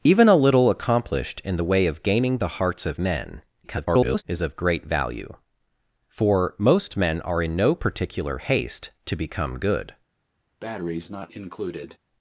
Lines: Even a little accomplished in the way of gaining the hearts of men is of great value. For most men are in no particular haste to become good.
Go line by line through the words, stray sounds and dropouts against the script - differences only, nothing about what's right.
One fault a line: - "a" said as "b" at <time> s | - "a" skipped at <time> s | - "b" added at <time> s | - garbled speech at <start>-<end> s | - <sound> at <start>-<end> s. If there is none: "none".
- garbled speech at 3.6-4.2 s
- breath at 10.6-12.0 s